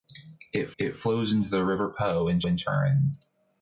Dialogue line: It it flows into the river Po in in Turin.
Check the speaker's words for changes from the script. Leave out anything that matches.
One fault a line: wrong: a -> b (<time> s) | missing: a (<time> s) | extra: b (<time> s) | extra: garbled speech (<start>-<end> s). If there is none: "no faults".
no faults